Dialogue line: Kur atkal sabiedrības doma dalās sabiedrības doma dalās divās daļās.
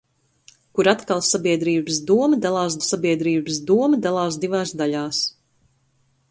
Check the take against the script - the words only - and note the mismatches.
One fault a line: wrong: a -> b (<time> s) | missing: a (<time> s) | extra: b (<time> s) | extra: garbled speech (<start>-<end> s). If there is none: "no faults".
no faults